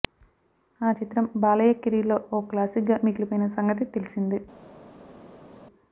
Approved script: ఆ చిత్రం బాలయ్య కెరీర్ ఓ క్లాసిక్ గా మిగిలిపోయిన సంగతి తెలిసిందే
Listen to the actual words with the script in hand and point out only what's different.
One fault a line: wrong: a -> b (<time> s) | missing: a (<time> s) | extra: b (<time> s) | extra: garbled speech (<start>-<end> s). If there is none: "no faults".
extra: లో (2.1 s)